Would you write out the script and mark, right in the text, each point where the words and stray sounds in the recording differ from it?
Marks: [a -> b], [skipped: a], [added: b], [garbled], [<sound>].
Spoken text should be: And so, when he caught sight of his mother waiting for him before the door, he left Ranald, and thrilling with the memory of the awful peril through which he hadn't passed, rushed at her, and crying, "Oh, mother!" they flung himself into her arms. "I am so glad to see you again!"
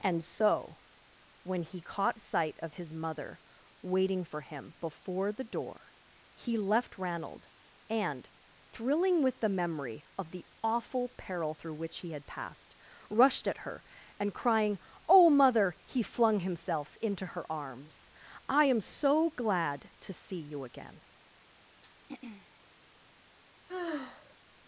And so, when he caught sight of his mother waiting for him before the door, he left Ranald, and thrilling with the memory of the awful peril through which he [hadn't -> had] passed, rushed at her, and crying, "Oh, mother!" [they -> he] flung himself into her arms. "I am so glad to see you again!" [throat clearing] [sigh]